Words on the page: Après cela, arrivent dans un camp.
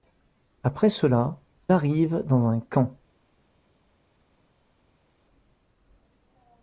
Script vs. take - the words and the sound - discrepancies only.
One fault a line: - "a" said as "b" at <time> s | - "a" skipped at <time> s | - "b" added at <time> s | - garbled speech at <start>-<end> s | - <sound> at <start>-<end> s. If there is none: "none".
none